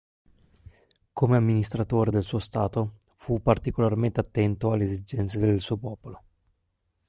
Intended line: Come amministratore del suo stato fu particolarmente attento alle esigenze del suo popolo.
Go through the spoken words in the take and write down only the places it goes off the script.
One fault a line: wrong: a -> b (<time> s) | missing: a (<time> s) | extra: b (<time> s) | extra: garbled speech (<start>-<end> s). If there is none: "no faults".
no faults